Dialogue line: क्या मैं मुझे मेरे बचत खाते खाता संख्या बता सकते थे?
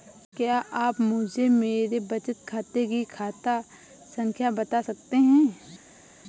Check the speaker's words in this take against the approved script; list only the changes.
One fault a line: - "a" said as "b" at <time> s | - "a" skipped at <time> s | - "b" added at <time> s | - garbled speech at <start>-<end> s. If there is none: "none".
- "मैं" said as "आप" at 0.7 s
- "की" added at 2.9 s
- "थे" said as "हैं" at 5.2 s